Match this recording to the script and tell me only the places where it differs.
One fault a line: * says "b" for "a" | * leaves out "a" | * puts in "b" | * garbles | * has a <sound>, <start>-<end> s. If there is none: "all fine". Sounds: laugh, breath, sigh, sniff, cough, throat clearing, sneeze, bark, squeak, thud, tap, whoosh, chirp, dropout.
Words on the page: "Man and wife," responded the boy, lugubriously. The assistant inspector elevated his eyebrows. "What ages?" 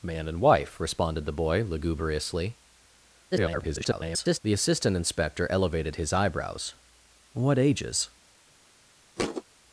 * garbles
* has a thud, 9.2-9.4 s